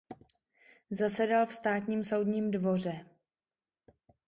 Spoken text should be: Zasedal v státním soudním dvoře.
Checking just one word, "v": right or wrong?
right